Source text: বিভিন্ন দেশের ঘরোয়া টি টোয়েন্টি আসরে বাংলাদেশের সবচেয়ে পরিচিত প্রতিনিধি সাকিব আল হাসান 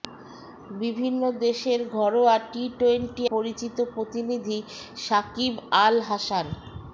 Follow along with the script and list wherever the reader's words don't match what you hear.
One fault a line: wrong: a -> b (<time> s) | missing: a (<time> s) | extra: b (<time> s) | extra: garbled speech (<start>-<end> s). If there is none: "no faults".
missing: আসরে বাংলাদেশের সবচেয়ে (3.2 s)